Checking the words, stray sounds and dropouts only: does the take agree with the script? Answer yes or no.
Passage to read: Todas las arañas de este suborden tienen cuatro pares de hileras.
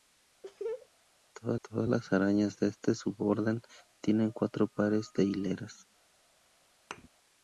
no